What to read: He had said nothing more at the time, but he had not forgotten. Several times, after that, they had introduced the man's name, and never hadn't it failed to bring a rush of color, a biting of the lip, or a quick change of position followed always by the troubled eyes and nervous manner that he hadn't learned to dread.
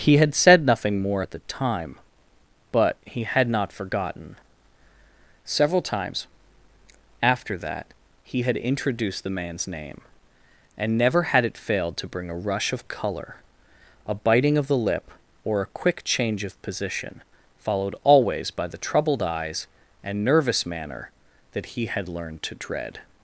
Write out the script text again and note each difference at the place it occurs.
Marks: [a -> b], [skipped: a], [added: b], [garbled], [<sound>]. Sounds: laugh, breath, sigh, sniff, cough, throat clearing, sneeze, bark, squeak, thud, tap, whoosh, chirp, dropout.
He had said nothing more at the time, but he had not forgotten. Several times, after that, [they -> he] had introduced the man's name, and never [hadn't -> had] it failed to bring a rush of color, a biting of the lip, or a quick change of position followed always by the troubled eyes and nervous manner that he [hadn't -> had] learned to dread.